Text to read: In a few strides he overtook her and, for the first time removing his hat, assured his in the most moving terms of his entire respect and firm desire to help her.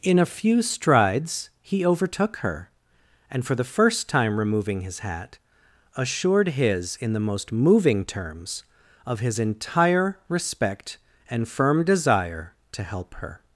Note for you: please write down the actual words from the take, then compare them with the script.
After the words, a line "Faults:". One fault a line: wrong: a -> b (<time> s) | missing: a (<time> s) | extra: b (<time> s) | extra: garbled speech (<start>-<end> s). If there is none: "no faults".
In a few strides he overtook her and, for the first time removing his hat, assured his in the most moving terms of his entire respect and firm desire to help her.
Faults:
no faults